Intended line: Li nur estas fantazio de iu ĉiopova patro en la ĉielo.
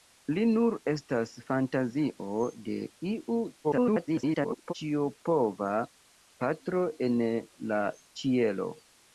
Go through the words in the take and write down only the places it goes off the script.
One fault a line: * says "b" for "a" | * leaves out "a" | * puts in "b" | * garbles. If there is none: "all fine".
* garbles